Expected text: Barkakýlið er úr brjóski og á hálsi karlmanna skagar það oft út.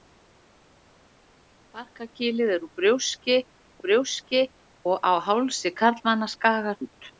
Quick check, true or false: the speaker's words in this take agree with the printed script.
false